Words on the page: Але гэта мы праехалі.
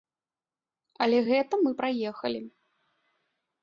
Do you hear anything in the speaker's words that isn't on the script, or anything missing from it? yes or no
no